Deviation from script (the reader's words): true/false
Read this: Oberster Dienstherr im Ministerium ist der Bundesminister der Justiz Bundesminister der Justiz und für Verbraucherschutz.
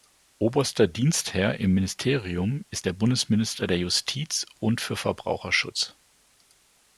true